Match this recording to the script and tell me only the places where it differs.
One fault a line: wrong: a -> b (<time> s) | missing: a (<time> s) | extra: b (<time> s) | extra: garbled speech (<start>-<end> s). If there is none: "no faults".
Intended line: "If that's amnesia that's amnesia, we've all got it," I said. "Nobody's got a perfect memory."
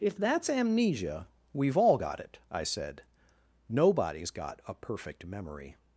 missing: that's amnesia (1.3 s)